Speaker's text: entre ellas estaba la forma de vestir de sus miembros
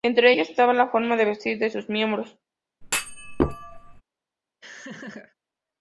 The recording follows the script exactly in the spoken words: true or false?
true